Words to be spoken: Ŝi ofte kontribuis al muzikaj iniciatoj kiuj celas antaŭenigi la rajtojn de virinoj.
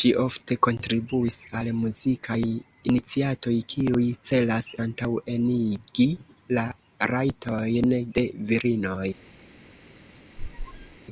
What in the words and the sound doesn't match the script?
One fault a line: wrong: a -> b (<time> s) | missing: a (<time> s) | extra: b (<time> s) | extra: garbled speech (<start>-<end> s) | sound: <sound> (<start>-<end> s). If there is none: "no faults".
sound: squeak (10.4-11.0 s)